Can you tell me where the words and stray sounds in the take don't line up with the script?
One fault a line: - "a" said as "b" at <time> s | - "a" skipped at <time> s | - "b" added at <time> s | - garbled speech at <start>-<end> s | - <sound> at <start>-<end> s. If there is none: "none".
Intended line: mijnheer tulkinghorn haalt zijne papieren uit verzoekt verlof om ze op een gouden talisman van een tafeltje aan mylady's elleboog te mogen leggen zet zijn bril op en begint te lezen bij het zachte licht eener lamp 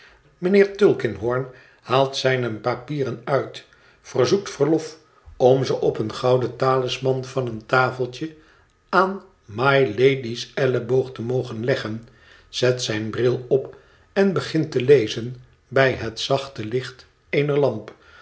none